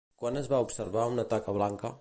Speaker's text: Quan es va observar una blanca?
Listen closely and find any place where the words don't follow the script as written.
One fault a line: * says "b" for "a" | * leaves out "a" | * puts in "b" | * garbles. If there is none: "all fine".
* puts in "taca"